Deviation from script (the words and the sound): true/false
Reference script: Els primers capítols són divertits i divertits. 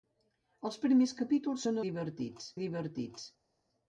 false